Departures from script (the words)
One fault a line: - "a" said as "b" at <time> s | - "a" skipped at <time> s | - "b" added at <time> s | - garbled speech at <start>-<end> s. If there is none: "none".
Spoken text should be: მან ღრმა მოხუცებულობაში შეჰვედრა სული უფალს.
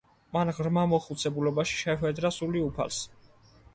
none